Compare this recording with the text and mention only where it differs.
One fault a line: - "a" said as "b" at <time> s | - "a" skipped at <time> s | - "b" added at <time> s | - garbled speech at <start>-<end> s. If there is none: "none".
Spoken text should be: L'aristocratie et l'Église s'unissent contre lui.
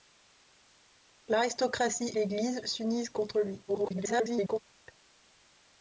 - "et" skipped at 2.1 s
- garbled speech at 3.7-4.6 s